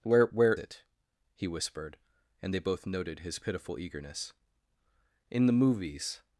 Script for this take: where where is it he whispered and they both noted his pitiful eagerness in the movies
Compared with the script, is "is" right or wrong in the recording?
wrong